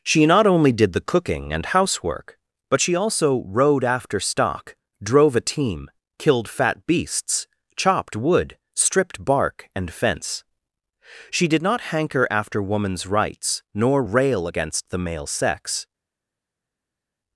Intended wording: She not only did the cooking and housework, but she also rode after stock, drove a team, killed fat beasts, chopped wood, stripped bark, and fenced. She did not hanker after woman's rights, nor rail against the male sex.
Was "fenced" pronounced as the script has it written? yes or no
no